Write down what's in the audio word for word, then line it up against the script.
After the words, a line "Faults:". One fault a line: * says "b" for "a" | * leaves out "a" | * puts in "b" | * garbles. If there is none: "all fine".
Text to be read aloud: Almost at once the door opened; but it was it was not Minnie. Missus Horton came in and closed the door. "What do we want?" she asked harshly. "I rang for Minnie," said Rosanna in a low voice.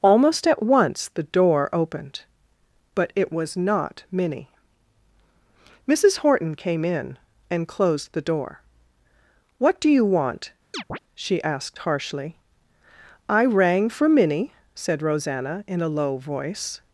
Almost at once the door opened; but it was not Minnie. Missus Horton came in and closed the door. "What do you want?" she asked harshly. "I rang for Minnie," said Rosanna in a low voice.
Faults:
* leaves out "it was"
* says "you" for "we"